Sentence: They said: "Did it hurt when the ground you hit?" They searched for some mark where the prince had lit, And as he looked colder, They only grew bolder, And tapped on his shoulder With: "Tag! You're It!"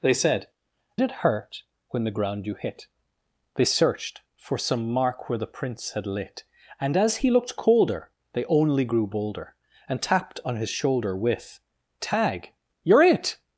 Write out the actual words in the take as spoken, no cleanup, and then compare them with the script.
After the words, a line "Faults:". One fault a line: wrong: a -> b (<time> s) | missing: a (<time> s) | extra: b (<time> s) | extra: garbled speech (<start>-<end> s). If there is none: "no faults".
They said: "It hurt when the ground you hit?" They searched for some mark where the prince had lit, And as he looked colder, They only grew bolder, And tapped on his shoulder With: "Tag! You're It!"
Faults:
missing: Did (0.5 s)